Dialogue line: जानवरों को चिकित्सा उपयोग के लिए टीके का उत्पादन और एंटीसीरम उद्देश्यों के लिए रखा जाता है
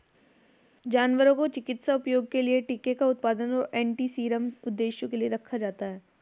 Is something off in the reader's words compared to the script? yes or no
no